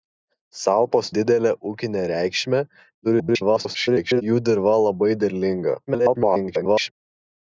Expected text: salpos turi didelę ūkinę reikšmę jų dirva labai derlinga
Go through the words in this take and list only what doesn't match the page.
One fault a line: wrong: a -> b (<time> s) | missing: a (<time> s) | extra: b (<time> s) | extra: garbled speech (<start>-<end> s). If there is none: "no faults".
missing: turi (1.1 s)
extra: garbled speech (3.0-4.2 s)
extra: garbled speech (5.9-6.9 s)